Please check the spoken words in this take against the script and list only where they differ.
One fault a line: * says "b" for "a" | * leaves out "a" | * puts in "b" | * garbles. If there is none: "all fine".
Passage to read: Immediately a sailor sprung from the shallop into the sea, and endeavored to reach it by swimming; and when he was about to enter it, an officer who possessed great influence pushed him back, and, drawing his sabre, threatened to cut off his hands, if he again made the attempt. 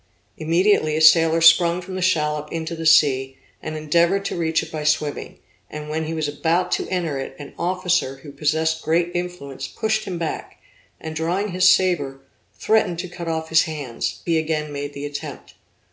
* leaves out "if"